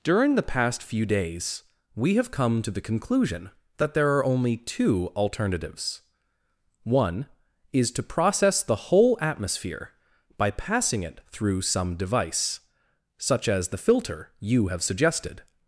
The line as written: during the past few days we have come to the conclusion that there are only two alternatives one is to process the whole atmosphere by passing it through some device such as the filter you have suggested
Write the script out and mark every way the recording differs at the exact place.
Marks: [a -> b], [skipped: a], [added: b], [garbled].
during the past few days we have come to the conclusion that there are only two alternatives one is to process the whole atmosphere by passing it through some device such as the filter you have suggested